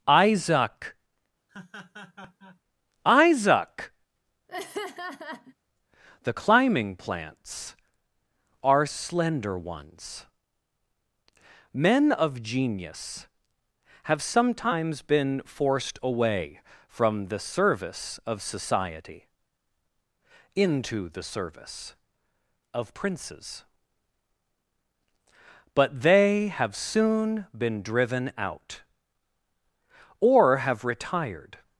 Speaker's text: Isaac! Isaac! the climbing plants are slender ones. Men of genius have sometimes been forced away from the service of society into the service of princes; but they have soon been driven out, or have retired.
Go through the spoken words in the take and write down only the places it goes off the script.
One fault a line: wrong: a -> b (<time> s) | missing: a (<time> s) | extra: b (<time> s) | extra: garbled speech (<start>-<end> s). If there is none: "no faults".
no faults